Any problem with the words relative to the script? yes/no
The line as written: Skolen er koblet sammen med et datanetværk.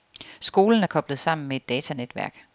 no